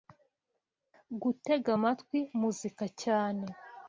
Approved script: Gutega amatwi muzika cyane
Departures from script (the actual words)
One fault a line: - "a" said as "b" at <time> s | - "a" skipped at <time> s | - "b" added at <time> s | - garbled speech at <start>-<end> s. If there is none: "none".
none